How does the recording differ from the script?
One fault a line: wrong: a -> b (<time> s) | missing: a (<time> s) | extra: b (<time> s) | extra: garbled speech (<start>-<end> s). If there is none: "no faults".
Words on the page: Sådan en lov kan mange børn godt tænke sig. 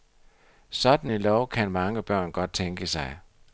no faults